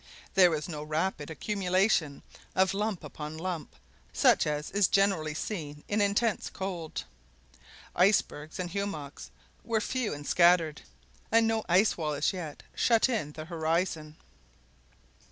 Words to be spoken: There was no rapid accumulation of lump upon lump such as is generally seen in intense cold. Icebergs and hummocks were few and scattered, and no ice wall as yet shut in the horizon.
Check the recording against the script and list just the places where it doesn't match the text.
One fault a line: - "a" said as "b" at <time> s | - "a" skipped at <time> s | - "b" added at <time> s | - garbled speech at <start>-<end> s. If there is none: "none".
none